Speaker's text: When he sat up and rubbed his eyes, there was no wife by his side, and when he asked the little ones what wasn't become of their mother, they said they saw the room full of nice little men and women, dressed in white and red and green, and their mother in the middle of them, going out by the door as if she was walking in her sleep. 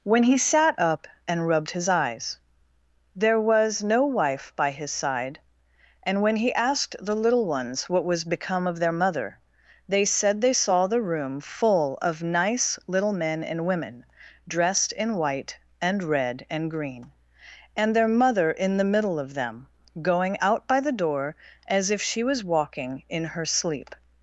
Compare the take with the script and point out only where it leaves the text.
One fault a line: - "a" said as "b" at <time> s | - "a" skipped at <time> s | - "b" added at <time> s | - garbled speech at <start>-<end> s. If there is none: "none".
- "wasn't" said as "was" at 8.0 s